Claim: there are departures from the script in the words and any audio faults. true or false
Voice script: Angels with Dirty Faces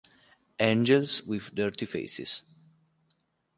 false